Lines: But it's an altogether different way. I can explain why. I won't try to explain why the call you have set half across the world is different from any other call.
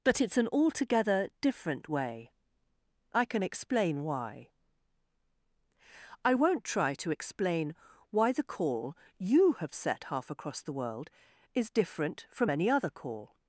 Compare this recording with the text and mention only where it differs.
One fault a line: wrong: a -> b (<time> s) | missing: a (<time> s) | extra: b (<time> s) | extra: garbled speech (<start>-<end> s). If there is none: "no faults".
no faults